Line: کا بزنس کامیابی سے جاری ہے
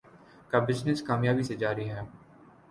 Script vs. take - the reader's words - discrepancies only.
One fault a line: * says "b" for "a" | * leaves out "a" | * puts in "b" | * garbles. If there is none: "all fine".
all fine